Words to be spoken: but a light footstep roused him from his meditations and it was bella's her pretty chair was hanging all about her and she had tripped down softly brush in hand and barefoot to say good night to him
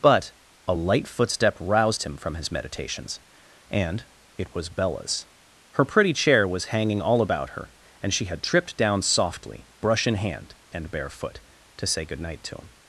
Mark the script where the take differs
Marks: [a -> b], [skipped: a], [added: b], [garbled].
but a light footstep roused him from his meditations and it was bella's her pretty chair was hanging all about her and she had tripped down softly brush in hand and barefoot to say good night to him